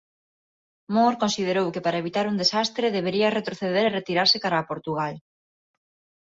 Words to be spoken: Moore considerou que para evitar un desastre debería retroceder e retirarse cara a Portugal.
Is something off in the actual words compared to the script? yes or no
no